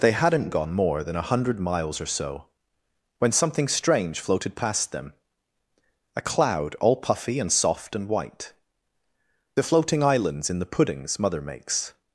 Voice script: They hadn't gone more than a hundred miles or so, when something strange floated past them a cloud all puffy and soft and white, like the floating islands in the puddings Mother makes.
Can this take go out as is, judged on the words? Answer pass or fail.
fail